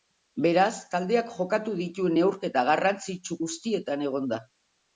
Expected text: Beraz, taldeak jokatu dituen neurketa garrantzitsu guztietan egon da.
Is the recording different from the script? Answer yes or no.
no